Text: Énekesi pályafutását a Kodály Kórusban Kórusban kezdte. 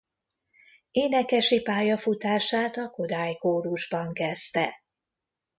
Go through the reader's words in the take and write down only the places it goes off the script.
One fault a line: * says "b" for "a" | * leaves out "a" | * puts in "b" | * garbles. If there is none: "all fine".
* leaves out "Kórusban"